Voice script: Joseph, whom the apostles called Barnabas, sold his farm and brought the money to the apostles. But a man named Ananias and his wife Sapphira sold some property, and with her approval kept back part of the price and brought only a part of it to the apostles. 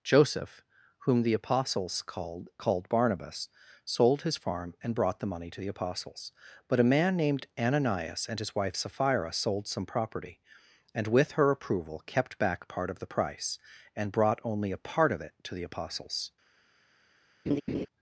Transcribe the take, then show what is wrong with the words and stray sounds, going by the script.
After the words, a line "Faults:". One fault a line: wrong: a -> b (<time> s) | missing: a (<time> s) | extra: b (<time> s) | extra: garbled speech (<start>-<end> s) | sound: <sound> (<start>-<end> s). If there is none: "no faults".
Joseph, whom the apostles called called Barnabas, sold his farm and brought the money to the apostles. But a man named Ananias and his wife Sapphira sold some property, and with her approval kept back part of the price and brought only a part of it to the apostles.
Faults:
extra: called (2.6 s)
sound: laugh (17.5-17.9 s)